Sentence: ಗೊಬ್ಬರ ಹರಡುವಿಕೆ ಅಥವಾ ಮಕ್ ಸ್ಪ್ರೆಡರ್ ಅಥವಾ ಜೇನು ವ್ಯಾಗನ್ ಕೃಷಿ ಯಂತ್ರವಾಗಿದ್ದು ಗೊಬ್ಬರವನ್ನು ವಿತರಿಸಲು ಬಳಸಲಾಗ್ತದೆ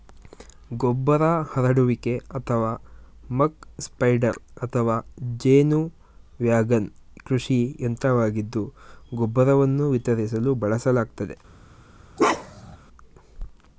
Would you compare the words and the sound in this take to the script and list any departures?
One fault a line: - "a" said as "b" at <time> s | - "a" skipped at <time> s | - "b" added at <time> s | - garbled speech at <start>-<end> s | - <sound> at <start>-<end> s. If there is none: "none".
- bark at 12.2-12.8 s